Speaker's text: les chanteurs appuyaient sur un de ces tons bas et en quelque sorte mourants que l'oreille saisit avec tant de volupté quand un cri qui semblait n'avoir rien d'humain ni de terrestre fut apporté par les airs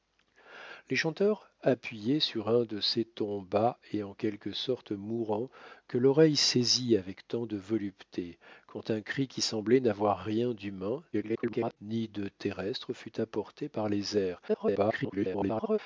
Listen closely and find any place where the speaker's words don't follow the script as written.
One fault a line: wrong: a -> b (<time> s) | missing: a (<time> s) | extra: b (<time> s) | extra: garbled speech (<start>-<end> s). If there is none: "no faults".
extra: garbled speech (11.1-11.8 s)
extra: garbled speech (14.5-15.8 s)